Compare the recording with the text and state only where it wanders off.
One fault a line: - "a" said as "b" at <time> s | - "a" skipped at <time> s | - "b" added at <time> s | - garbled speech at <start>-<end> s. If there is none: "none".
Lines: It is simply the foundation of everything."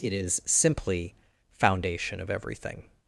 - "the" skipped at 1.1 s